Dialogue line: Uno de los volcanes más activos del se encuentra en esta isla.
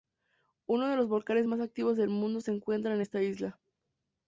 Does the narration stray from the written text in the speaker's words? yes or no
yes